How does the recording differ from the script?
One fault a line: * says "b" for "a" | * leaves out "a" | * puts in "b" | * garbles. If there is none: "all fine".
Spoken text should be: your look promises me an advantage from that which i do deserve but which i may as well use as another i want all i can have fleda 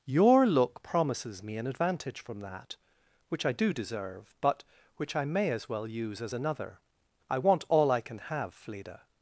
all fine